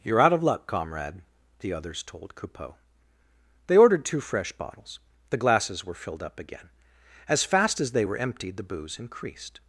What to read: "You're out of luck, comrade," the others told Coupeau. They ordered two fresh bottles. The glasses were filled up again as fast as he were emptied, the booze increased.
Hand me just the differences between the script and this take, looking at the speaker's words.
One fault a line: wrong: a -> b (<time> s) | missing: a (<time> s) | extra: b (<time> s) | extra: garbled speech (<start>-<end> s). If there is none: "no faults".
wrong: he -> they (7.9 s)